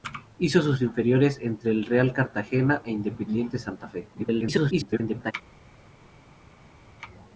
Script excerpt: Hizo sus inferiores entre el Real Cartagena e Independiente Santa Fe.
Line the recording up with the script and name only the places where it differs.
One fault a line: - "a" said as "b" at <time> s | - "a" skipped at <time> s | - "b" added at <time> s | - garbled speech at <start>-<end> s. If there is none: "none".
- garbled speech at 4.1-5.3 s